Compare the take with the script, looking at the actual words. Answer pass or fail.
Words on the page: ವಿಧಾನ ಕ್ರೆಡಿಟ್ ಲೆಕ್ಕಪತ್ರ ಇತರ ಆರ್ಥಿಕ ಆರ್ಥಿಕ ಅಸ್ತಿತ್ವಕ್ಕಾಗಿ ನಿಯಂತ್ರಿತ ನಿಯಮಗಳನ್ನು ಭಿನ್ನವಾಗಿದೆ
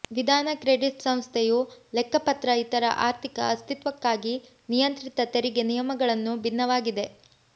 fail